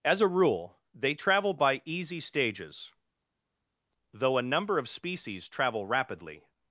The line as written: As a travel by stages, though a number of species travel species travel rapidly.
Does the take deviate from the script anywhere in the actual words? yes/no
yes